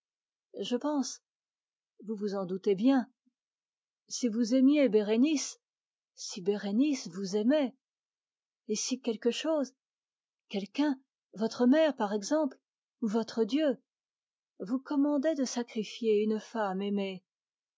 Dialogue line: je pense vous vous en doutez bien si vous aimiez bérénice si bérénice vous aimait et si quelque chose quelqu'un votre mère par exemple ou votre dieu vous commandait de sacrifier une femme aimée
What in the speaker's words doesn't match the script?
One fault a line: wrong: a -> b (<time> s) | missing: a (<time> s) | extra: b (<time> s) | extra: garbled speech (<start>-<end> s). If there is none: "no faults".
no faults